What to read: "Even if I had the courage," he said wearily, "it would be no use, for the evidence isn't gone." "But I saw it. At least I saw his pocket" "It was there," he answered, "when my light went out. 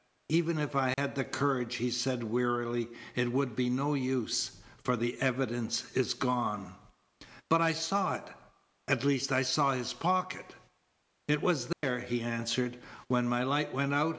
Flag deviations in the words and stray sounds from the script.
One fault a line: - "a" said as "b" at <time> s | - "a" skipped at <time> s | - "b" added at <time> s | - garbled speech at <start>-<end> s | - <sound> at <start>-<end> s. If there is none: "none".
- dropout at 0.9-1.0 s
- "isn't" said as "is" at 6.0 s
- dropout at 11.7-11.8 s